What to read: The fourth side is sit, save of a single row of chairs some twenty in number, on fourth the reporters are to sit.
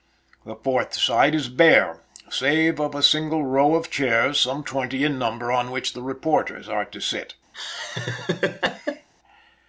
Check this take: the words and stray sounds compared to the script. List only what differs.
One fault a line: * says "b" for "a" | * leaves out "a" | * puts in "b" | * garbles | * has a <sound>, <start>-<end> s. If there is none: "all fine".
* says "bare" for "sit"
* says "which" for "fourth"
* has a laugh, 7.5-9.1 s